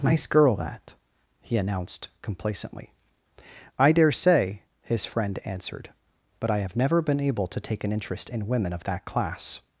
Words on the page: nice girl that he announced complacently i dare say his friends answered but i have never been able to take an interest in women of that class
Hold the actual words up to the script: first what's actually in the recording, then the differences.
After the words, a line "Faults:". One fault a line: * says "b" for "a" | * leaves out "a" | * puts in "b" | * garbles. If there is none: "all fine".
nice girl that he announced complacently i dare say his friend answered but i have never been able to take an interest in women of that class
Faults:
* says "friend" for "friends"